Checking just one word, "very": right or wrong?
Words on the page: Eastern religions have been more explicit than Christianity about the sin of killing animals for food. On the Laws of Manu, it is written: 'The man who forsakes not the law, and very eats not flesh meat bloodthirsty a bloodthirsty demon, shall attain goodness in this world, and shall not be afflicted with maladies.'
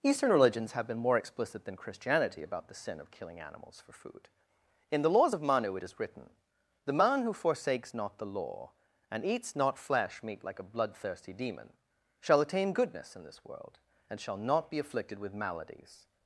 wrong